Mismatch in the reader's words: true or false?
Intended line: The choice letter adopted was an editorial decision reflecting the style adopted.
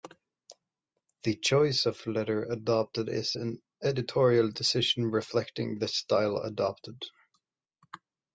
true